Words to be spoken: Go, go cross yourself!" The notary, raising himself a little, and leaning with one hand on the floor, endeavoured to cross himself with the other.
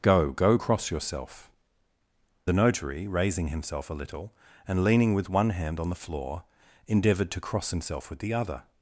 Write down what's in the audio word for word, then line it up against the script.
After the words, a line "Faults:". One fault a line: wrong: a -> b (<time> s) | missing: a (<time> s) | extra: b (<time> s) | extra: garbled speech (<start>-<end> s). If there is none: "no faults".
Go, go cross yourself!" The notary, raising himself a little, and leaning with one hand on the floor, endeavoured to cross himself with the other.
Faults:
no faults